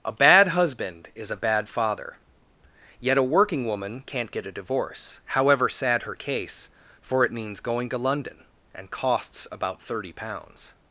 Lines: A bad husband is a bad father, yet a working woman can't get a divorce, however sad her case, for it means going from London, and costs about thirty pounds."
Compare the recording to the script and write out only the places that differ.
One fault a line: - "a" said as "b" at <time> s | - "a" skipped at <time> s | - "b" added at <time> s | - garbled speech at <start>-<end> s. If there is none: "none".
- "from" said as "to" at 7.9 s